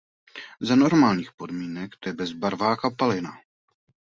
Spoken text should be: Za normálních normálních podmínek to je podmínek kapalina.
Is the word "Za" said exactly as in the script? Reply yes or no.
yes